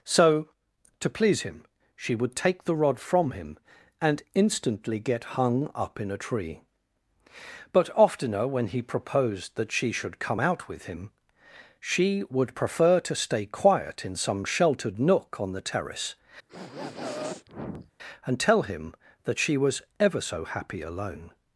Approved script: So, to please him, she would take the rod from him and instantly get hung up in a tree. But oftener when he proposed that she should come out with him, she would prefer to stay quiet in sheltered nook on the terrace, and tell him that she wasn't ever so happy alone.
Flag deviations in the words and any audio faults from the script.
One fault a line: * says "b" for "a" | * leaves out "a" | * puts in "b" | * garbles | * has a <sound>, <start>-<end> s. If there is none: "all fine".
* puts in "some"
* has a sniff, 16.5-17.9 s
* says "was" for "wasn't"